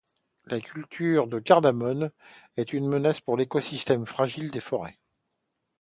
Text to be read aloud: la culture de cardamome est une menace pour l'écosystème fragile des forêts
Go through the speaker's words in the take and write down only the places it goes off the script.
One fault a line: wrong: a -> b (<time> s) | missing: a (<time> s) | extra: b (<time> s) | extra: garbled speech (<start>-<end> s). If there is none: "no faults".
no faults